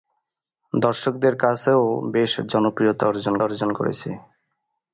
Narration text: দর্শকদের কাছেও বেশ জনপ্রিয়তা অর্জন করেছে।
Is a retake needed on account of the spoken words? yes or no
yes